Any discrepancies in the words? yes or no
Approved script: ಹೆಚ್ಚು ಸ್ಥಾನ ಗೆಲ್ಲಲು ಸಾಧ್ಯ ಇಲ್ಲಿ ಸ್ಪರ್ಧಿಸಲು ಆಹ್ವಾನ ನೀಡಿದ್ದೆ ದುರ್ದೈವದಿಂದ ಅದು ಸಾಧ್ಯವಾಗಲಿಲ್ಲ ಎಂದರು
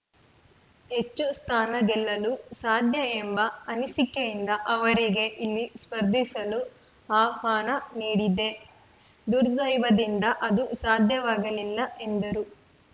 yes